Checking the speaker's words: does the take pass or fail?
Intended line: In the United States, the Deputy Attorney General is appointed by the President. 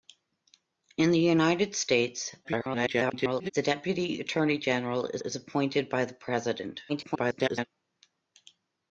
fail